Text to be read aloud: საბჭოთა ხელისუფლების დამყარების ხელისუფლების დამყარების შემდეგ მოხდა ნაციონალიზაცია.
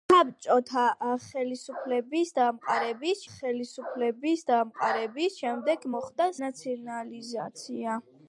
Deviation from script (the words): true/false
false